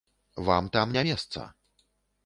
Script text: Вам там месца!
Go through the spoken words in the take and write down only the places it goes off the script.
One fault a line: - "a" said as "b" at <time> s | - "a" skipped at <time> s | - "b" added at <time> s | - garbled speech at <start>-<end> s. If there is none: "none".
- "не" added at 0.9 s